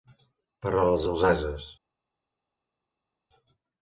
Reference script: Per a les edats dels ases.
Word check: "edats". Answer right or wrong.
wrong